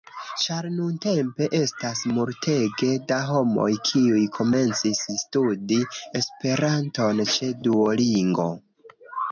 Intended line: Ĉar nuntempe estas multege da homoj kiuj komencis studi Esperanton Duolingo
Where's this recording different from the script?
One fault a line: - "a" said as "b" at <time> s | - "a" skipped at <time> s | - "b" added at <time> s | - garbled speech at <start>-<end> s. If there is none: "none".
- "ĉe" added at 7.4 s